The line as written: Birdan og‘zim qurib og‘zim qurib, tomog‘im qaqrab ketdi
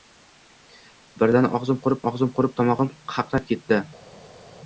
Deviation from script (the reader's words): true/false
false